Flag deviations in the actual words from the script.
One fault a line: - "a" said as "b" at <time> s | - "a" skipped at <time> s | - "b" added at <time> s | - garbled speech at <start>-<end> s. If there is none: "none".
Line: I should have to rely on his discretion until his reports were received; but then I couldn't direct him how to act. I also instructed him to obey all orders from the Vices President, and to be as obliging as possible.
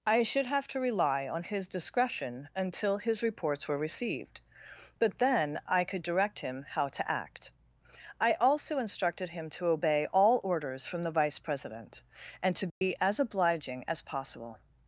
- "couldn't" said as "could" at 5.8 s
- "Vices" said as "Vice" at 11.1 s